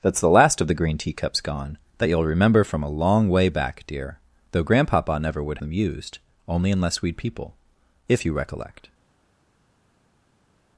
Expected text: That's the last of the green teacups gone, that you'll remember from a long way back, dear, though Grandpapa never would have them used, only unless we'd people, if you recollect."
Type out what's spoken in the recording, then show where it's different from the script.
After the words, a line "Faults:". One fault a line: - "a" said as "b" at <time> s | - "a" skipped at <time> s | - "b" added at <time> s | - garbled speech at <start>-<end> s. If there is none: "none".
That's the last of the green teacups gone, that you'll remember from a long way back, dear, though Grandpapa never would them used, only unless we'd people, if you recollect."
Faults:
- "have" skipped at 5.6 s